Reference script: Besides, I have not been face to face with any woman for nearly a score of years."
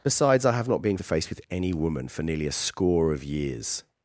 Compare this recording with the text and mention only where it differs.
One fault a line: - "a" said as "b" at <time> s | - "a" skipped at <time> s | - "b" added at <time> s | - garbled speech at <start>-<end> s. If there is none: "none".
- "face" skipped at 1.0 s